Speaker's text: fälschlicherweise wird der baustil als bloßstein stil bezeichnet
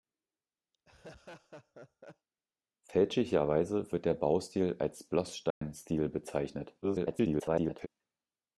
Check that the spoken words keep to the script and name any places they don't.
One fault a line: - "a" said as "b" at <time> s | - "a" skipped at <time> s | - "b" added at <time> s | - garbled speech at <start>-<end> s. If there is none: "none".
- garbled speech at 6.8-7.9 s